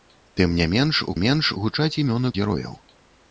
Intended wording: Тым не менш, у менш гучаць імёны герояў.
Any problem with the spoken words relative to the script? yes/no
no